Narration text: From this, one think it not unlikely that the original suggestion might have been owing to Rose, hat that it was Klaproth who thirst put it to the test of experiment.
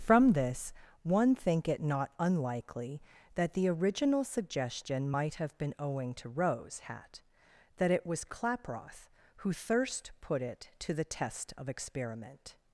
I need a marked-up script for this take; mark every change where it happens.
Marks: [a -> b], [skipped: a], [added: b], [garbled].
From this, one think it not unlikely that the original suggestion might have been owing to Rose, hat that it was Klaproth who thirst put it to the test of experiment.